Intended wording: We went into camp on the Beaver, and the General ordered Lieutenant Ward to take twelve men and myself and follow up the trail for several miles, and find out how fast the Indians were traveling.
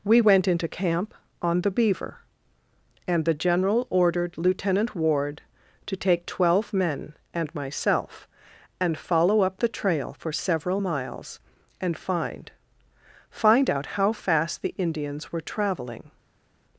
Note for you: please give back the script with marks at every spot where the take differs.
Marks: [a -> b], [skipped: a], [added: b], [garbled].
We went into camp on the Beaver, and the General ordered Lieutenant Ward to take twelve men and myself and follow up the trail for several miles, and find [added: find] out how fast the Indians were traveling.